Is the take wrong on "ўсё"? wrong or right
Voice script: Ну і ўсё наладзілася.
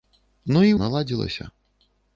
wrong